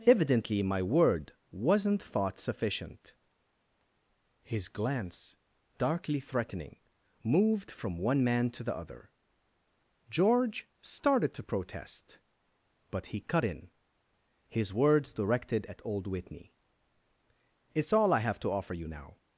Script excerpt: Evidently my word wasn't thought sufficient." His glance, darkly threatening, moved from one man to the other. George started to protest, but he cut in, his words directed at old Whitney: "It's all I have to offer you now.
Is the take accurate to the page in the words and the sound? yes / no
yes